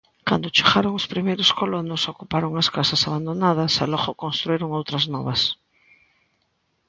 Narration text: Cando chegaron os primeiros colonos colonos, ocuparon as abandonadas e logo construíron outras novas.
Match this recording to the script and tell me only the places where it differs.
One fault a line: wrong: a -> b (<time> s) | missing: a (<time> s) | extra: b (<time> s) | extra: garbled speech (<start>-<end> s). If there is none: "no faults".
missing: colonos (2.0 s)
extra: casas (2.8 s)